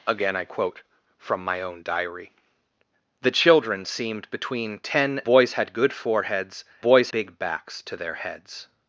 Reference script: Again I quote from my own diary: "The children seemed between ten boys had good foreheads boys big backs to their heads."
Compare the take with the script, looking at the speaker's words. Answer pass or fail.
pass